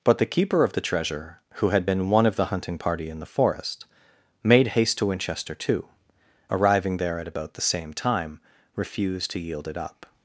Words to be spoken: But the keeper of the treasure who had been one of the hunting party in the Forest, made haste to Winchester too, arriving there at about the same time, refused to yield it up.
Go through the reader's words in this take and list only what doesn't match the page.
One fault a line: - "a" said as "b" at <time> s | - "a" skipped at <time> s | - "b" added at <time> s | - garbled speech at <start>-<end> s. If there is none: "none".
none